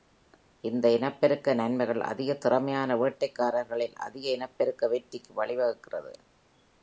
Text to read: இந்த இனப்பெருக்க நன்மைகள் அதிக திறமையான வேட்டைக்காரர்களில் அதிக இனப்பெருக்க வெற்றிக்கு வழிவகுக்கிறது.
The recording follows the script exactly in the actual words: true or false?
true